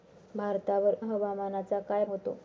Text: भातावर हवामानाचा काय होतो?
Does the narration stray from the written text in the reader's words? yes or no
no